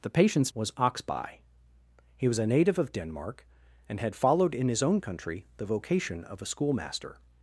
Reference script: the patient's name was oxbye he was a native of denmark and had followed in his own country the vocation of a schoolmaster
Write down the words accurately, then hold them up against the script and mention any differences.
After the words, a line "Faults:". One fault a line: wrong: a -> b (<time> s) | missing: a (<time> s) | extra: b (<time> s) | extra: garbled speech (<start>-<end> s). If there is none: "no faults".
the patient's was oxbye he was a native of denmark and had followed in his own country the vocation of a schoolmaster
Faults:
missing: name (0.5 s)